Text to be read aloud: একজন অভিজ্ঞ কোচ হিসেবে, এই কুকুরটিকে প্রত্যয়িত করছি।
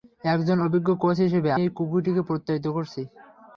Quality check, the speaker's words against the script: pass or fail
pass